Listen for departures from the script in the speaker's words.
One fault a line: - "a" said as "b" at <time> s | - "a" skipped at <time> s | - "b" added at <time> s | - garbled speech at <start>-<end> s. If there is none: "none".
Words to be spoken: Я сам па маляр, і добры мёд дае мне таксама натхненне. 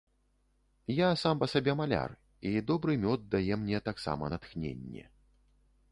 - "сабе" added at 1.5 s